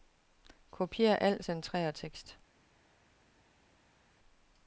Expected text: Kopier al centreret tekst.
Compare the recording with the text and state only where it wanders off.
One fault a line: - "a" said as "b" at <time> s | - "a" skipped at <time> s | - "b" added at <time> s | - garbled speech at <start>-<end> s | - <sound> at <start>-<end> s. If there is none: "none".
none